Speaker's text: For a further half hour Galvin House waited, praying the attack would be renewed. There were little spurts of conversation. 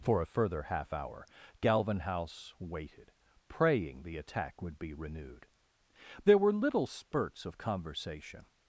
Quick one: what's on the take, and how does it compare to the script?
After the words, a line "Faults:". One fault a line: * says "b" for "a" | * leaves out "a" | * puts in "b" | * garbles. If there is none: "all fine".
For a further half hour Galvin House waited, praying the attack would be renewed. There were little spurts of conversation.
Faults:
all fine